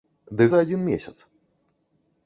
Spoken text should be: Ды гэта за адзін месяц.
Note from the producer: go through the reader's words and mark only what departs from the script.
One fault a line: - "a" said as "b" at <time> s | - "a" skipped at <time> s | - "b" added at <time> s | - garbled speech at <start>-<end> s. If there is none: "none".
- "гэта" skipped at 0.5 s